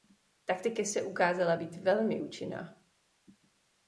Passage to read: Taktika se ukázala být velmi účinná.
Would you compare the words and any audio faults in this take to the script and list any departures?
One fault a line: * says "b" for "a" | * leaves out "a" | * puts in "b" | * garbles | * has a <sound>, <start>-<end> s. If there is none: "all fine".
all fine